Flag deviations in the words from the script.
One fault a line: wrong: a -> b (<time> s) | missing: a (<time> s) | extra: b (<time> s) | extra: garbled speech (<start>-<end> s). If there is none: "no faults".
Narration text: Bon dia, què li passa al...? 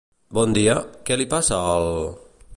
no faults